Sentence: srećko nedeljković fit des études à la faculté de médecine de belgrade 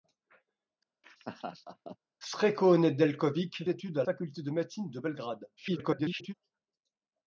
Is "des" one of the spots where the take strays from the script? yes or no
yes